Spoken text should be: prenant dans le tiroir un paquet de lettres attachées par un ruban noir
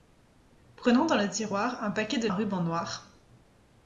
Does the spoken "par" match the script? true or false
false